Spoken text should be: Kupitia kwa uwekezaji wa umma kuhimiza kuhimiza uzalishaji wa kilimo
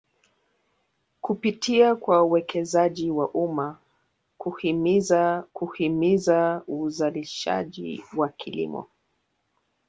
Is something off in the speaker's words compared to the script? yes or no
no